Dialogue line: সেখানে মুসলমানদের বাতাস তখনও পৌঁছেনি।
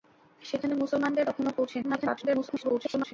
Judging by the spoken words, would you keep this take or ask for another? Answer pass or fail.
fail